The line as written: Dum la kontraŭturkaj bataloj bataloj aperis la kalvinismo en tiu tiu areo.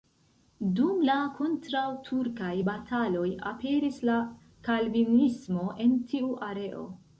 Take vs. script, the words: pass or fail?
fail